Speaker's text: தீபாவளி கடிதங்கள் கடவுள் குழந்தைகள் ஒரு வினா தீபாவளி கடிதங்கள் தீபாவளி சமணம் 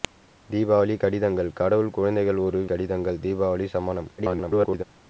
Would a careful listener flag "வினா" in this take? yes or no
yes